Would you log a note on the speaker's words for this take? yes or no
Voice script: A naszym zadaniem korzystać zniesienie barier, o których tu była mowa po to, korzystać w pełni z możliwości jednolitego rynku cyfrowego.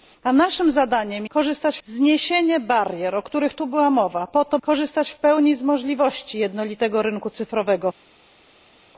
no